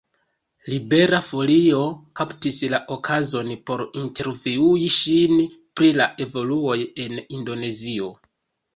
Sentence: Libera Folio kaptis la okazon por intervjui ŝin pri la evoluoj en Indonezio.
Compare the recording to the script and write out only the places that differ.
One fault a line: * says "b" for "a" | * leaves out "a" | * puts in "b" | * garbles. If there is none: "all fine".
all fine